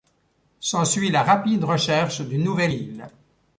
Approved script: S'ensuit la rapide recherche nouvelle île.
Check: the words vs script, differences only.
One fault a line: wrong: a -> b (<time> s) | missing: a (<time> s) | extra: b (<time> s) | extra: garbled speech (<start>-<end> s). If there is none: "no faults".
extra: d'une (2.2 s)